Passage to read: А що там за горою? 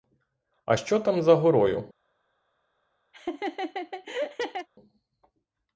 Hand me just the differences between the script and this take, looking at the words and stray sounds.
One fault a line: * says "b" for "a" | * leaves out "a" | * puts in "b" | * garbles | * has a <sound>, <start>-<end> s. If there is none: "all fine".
* has a laugh, 3.1-4.7 s